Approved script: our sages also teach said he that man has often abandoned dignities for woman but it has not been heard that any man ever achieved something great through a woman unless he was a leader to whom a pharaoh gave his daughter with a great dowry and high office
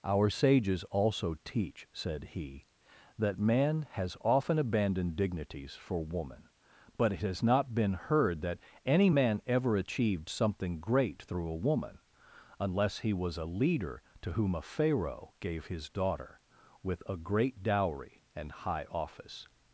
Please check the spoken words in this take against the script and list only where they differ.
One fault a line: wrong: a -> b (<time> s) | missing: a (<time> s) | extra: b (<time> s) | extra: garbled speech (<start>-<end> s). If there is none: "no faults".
no faults